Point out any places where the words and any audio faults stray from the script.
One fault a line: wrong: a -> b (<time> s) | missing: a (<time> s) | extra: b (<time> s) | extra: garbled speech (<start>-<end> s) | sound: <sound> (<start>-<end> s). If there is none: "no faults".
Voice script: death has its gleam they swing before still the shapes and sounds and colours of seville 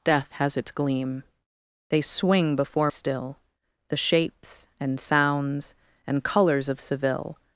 no faults